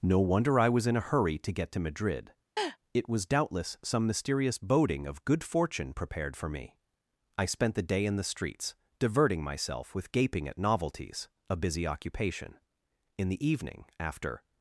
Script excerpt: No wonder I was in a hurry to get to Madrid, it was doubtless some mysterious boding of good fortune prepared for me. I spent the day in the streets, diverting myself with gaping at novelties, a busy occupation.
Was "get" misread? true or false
false